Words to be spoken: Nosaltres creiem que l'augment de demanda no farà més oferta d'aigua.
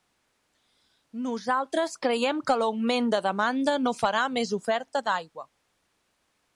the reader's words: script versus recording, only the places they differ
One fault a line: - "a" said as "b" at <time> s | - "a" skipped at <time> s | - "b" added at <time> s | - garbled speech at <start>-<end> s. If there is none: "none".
none